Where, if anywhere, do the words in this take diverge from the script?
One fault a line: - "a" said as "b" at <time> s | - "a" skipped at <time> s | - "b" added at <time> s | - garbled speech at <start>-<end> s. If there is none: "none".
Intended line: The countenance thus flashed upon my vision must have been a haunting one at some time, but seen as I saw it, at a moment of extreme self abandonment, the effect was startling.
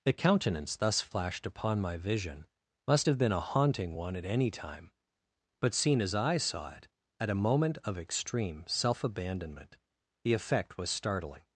- "some" said as "any" at 4.3 s